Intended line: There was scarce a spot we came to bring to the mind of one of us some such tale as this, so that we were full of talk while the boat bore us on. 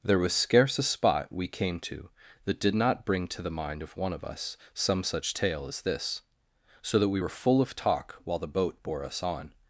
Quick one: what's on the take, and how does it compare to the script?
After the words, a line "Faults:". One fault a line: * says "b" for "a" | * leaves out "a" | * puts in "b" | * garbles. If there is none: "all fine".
There was scarce a spot we came to that did not bring to the mind of one of us some such tale as this, so that we were full of talk while the boat bore us on.
Faults:
* puts in "that did not"